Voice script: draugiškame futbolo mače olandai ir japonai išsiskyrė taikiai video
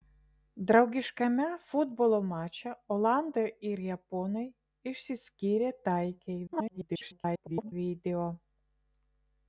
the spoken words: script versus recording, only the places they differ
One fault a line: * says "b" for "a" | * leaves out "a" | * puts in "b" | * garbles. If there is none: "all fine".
* garbles